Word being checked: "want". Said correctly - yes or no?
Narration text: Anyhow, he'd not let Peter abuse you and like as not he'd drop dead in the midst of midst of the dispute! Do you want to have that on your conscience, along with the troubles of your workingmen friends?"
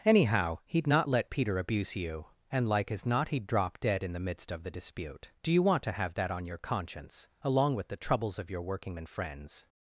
yes